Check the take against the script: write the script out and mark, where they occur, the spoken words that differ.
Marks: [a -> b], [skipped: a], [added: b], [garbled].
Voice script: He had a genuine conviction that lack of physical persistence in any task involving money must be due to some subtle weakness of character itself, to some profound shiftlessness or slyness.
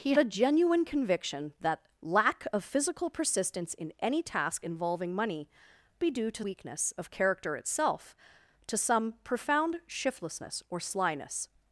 He [skipped: had] a genuine conviction that lack of physical persistence in any task involving money [skipped: must] be due to [skipped: some subtle] weakness of character itself, to some profound shiftlessness or slyness.